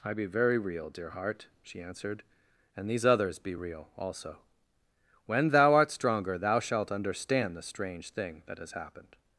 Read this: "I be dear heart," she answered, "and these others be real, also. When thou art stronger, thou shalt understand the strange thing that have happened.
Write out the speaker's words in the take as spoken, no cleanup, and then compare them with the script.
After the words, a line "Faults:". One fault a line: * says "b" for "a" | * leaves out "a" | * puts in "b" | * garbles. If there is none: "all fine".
"I be very real, dear heart," she answered, "and these others be real, also. When thou art stronger, thou shalt understand the strange thing that has happened.
Faults:
* puts in "very real"
* says "has" for "have"